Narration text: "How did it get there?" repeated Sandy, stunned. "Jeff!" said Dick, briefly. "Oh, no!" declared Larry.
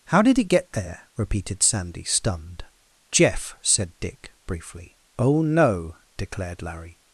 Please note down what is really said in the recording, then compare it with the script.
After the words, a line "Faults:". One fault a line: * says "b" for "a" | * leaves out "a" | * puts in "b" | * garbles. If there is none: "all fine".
"How did it get there?" repeated Sandy, stunned. "Jeff!" said Dick, briefly. "Oh, no!" declared Larry.
Faults:
all fine